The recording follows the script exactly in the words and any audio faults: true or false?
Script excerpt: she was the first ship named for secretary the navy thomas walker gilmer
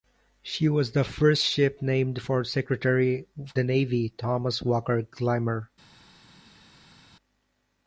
true